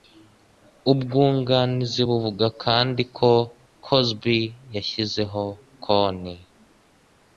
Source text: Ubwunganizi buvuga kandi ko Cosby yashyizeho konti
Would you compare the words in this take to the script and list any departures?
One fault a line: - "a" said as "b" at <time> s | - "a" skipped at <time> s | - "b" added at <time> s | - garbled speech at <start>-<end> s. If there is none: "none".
none